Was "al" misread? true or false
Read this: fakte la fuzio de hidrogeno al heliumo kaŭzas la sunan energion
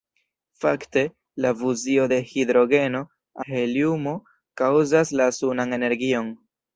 true